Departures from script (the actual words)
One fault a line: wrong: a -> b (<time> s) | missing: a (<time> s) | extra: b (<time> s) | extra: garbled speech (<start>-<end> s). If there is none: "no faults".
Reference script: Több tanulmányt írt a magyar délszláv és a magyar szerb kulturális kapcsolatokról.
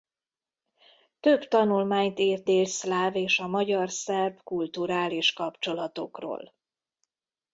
missing: a magyar (2.5 s)